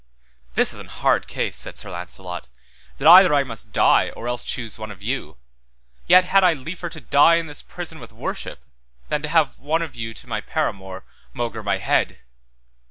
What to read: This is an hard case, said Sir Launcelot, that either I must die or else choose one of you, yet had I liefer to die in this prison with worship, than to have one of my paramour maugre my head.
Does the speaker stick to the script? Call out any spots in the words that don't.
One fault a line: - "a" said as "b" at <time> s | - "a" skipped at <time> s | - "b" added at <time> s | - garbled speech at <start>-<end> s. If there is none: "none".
- "you to" added at 10.0 s